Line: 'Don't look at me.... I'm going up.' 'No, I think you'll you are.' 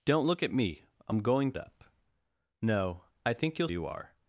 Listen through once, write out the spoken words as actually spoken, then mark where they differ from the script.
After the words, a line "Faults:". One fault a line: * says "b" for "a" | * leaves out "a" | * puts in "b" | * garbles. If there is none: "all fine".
'Don't look at me.... I'm going up.' 'No, I think you'll you are.'
Faults:
all fine